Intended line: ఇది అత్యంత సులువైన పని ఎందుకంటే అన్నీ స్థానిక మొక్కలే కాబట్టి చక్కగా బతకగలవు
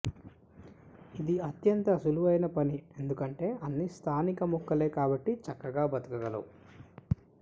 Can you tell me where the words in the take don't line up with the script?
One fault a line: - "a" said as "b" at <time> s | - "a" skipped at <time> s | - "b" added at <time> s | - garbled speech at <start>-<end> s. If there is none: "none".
none